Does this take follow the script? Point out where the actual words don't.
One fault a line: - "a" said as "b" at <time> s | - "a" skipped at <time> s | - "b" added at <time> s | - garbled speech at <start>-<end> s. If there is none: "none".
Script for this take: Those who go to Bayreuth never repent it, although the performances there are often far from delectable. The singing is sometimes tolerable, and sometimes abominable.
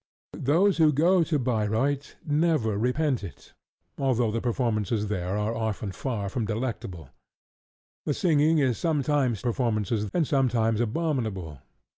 - "tolerable" said as "performances" at 9.4 s